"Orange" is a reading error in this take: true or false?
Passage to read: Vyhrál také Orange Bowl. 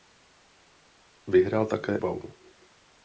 true